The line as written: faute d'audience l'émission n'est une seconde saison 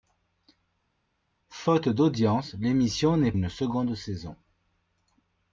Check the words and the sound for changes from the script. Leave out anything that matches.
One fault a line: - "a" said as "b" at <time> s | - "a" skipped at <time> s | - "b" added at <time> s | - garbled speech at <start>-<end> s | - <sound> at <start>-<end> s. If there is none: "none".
none